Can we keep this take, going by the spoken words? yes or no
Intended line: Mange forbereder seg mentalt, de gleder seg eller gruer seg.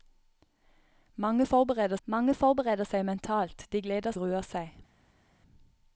no